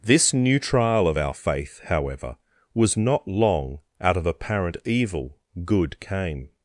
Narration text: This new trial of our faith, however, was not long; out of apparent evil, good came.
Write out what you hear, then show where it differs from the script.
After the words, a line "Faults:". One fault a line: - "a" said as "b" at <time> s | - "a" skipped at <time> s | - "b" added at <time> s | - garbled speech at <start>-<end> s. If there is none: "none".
This new trial of our faith, however, was not long; out of apparent evil, good came.
Faults:
none